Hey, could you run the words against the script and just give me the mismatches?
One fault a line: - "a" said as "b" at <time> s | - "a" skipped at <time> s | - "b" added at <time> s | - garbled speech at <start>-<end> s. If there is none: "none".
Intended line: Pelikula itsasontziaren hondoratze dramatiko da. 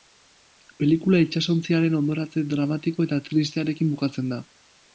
- "eta tristearekin bukatzen" added at 3.1 s